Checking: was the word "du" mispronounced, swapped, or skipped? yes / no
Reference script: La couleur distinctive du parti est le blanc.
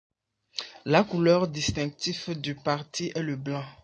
no